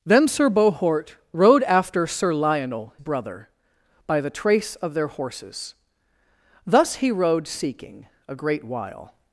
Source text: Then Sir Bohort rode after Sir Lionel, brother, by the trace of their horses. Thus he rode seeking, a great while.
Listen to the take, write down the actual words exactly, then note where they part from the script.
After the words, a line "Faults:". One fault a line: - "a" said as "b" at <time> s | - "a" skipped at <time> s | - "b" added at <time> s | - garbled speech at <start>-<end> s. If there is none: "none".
Then Sir Bohort rode after Sir Lionel, brother, by the trace of their horses. Thus he rode seeking, a great while.
Faults:
none